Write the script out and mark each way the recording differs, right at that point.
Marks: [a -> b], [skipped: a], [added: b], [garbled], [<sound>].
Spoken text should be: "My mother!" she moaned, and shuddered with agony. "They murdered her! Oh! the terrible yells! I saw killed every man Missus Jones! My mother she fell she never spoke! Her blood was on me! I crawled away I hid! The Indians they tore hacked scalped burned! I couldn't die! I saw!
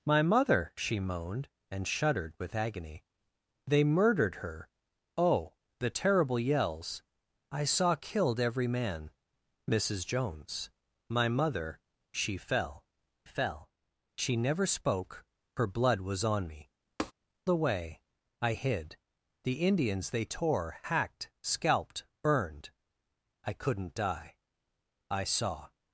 "My mother!" she moaned, and shuddered with agony. "They murdered her! Oh! the terrible yells! I saw killed every man Missus Jones! My mother she fell [added: fell] she never spoke! Her blood was on me! [skipped: I crawled] [tap] away I hid! The Indians they tore hacked scalped burned! I couldn't die! I saw!